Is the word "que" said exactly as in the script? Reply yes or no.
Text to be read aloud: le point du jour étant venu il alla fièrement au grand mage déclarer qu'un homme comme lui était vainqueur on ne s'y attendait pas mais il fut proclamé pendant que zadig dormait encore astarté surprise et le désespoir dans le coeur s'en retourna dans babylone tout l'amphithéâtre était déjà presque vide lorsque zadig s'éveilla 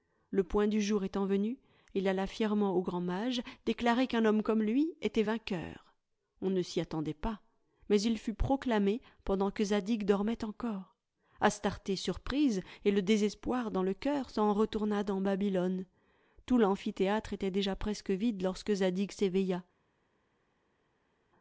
yes